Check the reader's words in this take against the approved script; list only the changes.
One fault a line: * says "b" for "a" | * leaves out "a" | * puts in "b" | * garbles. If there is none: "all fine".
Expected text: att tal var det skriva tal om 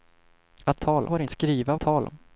all fine